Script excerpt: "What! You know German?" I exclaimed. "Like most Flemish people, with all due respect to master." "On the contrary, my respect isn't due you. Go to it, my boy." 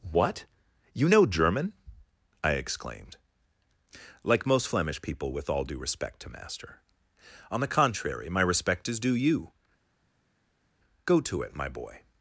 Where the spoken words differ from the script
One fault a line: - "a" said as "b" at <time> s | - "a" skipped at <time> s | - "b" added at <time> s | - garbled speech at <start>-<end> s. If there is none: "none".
- "isn't" said as "is" at 8.9 s